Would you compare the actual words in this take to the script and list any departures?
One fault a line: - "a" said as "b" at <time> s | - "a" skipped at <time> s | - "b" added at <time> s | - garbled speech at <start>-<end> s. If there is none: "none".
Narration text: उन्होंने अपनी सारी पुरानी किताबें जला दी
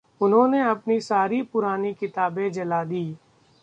none